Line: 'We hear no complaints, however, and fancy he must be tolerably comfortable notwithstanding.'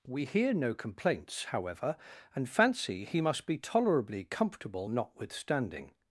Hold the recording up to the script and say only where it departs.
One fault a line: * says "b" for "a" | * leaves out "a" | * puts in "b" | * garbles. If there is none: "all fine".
all fine